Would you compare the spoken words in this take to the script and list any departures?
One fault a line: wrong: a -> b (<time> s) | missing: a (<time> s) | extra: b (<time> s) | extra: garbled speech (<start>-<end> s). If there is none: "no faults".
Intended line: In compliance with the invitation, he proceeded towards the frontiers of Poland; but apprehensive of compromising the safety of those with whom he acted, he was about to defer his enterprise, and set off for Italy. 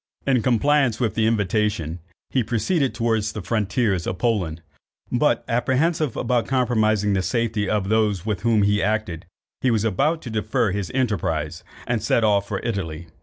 no faults